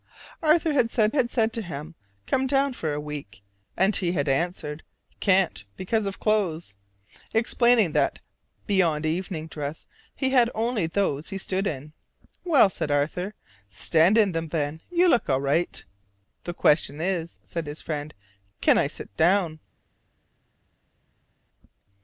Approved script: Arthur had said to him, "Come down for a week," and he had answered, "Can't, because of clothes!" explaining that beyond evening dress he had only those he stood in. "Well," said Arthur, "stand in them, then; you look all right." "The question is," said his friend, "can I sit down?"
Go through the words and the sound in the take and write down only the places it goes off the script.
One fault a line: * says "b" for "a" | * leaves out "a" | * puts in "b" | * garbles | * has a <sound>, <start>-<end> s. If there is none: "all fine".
* puts in "had said"